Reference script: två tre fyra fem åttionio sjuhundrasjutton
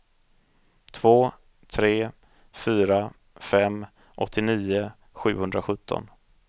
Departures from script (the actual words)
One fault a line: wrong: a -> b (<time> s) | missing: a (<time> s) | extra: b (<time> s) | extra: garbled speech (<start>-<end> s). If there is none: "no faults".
no faults